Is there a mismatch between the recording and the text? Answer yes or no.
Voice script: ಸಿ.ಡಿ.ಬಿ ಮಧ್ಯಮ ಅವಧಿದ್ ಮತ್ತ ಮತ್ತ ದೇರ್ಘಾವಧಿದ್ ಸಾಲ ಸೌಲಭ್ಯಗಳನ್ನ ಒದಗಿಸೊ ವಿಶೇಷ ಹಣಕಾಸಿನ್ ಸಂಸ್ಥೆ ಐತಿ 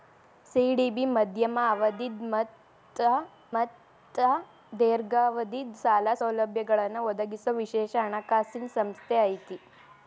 no